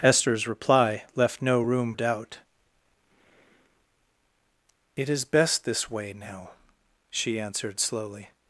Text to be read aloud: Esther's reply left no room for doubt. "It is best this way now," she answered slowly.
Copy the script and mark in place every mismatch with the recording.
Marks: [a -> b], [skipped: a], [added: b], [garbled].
Esther's reply left no room [skipped: for] doubt. "It is best this way now," she answered slowly.